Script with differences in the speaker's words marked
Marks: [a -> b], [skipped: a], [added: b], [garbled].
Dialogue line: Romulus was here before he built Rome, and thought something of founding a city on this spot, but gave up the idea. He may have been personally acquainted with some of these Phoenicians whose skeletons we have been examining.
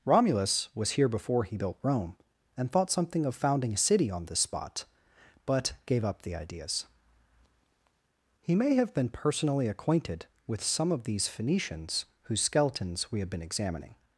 Romulus was here before he built Rome, and thought something of founding a city on this spot, but gave up the [idea. -> ideas] He may have been personally acquainted with some of these Phoenicians whose skeletons we have been examining.